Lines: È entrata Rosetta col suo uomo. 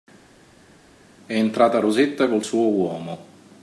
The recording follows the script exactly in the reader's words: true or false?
true